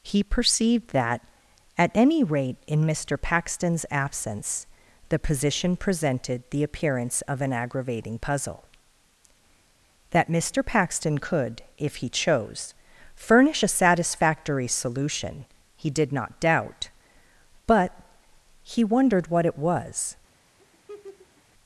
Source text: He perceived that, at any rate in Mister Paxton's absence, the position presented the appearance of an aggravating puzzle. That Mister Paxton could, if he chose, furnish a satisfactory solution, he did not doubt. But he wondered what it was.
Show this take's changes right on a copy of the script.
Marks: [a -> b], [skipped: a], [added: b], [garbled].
He perceived that, at any rate in Mister Paxton's absence, the position presented the appearance of an aggravating puzzle. That Mister Paxton could, if he chose, furnish a satisfactory solution, he did not doubt. But he wondered what it was.